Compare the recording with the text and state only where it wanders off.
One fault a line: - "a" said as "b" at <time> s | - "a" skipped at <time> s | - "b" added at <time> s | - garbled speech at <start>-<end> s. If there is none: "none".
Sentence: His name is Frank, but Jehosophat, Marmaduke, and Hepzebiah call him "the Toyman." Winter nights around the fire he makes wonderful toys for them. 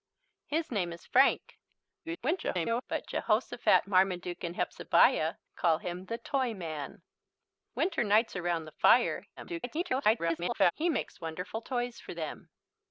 - garbled speech at 2.0-2.8 s
- garbled speech at 9.4-10.7 s